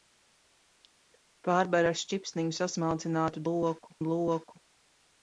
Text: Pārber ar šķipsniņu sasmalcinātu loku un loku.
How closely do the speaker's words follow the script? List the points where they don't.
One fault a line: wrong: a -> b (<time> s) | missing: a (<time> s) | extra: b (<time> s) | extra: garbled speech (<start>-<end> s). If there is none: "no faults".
no faults